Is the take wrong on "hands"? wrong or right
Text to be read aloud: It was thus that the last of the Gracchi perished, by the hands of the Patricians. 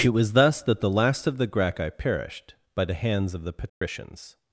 right